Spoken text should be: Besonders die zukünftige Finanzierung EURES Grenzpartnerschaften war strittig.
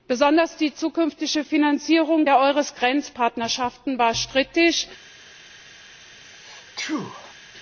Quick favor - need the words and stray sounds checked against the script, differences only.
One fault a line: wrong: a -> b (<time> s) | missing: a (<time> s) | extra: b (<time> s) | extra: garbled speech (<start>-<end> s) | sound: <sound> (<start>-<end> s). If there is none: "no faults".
extra: der (2.2 s)
sound: sneeze (6.2-7.3 s)